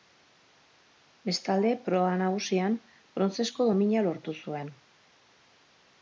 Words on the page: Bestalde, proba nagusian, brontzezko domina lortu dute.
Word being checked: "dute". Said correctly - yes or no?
no